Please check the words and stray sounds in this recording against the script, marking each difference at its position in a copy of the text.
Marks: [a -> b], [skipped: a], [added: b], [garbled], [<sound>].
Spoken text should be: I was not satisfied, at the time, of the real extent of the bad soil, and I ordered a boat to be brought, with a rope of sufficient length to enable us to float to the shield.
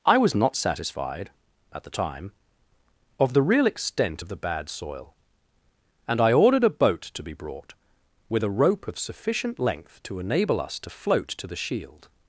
I was not satisfied, at the time, of the real extent of the bad soil, and I ordered a boat to be brought, with a rope of sufficient length to enable us to float to the shield.